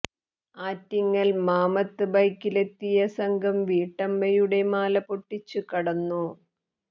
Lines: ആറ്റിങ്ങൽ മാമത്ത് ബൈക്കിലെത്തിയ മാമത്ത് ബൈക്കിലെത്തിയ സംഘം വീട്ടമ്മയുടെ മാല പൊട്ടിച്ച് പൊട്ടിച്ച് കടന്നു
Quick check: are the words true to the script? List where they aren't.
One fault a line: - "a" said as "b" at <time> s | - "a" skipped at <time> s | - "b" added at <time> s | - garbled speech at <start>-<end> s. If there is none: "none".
- "മാമത്ത് ബൈക്കിലെത്തിയ" skipped at 2.8 s
- "പൊട്ടിച്ച്" skipped at 5.6 s